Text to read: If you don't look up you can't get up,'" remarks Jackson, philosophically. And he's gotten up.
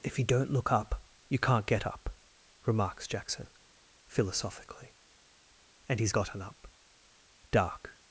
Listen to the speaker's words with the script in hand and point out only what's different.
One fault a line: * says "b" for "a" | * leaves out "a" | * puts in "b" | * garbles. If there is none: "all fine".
* puts in "Dark"